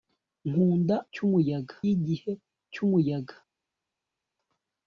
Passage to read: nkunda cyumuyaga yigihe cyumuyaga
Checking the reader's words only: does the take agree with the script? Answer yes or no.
yes